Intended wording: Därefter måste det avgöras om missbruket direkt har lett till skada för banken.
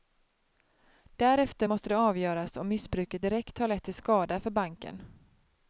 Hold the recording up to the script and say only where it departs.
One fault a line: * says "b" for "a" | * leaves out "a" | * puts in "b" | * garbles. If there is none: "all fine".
all fine